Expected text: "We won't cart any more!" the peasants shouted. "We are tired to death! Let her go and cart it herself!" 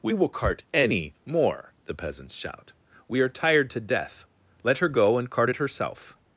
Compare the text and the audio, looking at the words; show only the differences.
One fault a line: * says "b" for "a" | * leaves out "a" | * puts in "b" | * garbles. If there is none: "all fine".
* says "will" for "won't"
* says "shout" for "shouted"